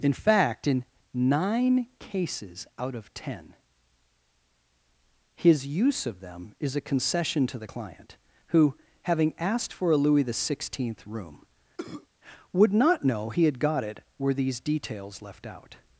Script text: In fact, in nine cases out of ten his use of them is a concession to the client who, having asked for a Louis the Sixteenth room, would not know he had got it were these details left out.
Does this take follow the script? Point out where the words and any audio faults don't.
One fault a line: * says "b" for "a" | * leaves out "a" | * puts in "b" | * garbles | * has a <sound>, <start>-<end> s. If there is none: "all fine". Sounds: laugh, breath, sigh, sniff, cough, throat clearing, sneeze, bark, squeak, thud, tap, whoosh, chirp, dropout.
* has a cough, 11.8-12.1 s